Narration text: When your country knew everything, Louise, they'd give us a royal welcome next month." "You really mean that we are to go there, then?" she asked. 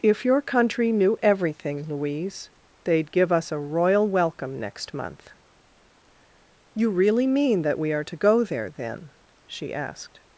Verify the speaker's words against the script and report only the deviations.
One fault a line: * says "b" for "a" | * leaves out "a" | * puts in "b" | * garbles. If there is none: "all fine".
* says "If" for "When"